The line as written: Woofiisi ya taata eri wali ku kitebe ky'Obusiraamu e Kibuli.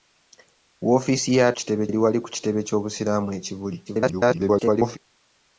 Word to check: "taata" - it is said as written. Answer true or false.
false